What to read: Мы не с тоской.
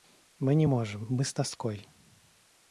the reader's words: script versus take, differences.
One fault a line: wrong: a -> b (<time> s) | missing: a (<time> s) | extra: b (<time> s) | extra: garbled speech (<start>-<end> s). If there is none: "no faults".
extra: можем мы (0.6 s)